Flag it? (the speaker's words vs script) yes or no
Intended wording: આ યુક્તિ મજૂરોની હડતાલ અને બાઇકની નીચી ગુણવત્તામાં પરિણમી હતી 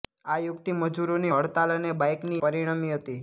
yes